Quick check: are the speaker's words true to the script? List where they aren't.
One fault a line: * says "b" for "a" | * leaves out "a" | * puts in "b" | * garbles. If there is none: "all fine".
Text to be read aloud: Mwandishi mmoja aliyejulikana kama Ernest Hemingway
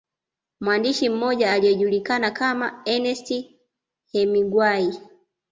all fine